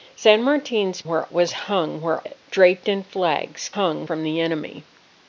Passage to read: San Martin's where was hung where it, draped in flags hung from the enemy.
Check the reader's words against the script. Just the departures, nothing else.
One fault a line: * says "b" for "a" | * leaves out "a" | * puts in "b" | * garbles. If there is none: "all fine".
all fine